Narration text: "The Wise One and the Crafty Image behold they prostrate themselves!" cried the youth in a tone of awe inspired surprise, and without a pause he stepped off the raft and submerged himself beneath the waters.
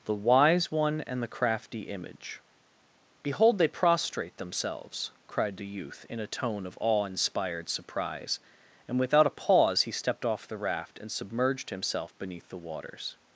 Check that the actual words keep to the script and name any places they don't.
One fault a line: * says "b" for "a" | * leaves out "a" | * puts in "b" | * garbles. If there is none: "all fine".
all fine